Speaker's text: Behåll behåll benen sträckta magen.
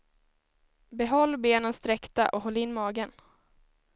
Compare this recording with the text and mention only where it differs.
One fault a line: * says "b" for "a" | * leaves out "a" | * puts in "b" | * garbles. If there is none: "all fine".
* leaves out "behåll"
* puts in "och håll in"